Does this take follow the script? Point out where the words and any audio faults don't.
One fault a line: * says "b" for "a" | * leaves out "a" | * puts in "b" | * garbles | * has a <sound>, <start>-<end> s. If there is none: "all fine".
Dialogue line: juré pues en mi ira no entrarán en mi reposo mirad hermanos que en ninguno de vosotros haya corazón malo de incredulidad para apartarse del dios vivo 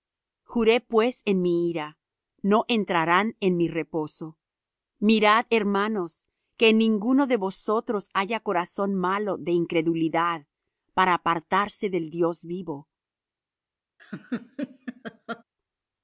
* has a laugh, 14.0-15.4 s